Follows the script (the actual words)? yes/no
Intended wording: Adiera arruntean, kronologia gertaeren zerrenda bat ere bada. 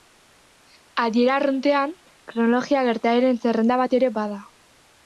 yes